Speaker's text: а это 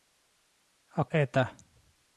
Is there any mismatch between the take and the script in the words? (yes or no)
no